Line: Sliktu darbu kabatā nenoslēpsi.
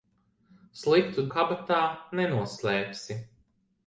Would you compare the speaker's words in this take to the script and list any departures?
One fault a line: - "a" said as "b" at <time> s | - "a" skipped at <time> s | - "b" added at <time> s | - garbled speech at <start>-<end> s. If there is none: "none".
- "darbu" skipped at 1.2 s